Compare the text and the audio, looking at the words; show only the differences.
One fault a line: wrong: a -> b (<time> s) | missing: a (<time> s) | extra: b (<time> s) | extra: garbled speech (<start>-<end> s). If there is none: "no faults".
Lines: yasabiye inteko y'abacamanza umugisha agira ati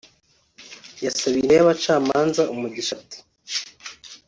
missing: inteko (1.4 s)
missing: agira (2.9 s)